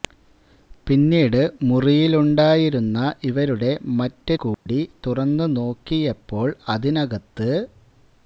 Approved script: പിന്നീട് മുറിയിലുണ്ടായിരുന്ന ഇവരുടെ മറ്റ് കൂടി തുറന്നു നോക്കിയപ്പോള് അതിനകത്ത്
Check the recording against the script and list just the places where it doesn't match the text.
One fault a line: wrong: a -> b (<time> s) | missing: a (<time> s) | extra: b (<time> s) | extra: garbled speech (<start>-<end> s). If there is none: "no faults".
no faults